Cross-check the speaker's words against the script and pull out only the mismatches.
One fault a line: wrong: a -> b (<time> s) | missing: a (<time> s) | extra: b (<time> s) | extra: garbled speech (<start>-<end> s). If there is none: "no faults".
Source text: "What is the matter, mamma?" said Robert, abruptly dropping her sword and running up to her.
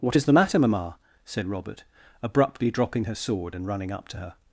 no faults